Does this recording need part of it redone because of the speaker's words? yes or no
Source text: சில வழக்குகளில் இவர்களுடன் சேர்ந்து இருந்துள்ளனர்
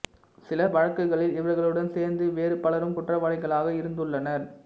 yes